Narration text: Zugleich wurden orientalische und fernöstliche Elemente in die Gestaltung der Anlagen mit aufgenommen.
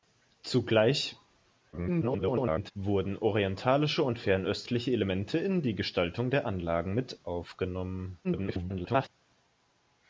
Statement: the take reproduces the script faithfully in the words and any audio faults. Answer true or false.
false